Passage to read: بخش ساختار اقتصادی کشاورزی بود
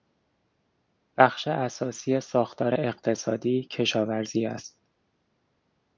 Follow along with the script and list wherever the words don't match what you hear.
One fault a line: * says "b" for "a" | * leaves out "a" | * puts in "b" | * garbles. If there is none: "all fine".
* puts in "اساسی"
* says "است" for "بود"